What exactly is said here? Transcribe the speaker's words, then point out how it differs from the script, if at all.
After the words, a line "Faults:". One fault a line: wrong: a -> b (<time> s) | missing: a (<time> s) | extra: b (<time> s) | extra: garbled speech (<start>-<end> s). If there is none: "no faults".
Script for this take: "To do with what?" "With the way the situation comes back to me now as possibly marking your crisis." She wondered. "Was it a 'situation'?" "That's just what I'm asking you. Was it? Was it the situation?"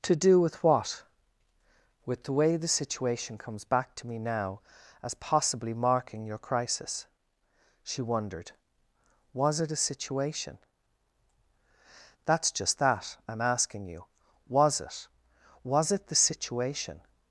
"To do with what?" "With the way the situation comes back to me now as possibly marking your crisis." She wondered. "Was it a 'situation'?" "That's just that I'm asking you. Was it? Was it the situation?"
Faults:
wrong: what -> that (12.8 s)